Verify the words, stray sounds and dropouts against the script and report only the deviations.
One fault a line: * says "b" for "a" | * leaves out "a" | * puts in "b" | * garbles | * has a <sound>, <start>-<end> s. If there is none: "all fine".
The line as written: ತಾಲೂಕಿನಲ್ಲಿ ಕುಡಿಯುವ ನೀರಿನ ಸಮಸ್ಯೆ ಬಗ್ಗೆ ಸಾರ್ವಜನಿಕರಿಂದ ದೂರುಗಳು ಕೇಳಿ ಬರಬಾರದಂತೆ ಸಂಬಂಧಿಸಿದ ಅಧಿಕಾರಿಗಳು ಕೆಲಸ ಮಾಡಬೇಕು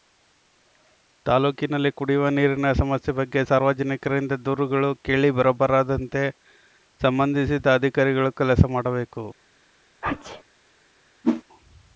* has a sneeze, 10.0-10.4 s
* has a whoosh, 11.2-11.4 s